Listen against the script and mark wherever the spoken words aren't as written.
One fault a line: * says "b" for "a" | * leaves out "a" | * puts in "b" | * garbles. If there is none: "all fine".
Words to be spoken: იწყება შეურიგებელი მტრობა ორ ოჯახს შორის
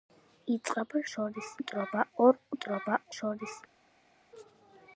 * says "შორის" for "შეურიგებელი"
* says "მტრობა" for "ოჯახს"